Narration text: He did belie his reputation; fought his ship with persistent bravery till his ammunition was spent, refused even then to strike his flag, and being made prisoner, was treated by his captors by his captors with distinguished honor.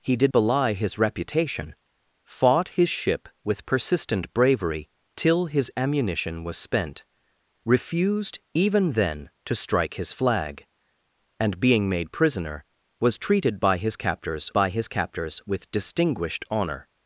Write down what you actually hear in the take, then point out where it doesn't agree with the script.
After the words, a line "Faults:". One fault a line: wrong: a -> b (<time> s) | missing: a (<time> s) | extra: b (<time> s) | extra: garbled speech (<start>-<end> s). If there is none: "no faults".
He did belie his reputation; fought his ship with persistent bravery till his ammunition was spent, refused even then to strike his flag, and being made prisoner, was treated by his captors by his captors with distinguished honor.
Faults:
no faults